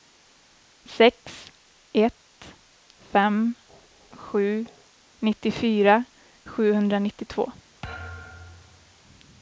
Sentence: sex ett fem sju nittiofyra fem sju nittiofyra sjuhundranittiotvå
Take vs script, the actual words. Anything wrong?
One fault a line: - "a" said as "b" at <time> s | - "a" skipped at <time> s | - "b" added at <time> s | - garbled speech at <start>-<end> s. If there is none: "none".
- "fem sju nittiofyra" skipped at 6.0 s